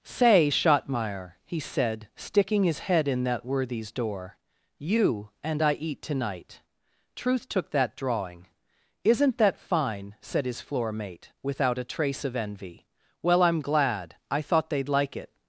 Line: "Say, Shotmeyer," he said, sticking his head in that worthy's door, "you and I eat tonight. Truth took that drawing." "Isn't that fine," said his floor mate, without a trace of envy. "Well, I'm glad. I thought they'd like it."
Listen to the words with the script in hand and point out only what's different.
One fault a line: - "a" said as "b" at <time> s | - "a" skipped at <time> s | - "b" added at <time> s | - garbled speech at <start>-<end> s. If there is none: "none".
none